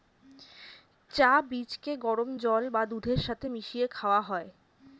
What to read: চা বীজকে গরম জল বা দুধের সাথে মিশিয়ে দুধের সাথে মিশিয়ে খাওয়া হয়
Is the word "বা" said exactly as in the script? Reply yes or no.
yes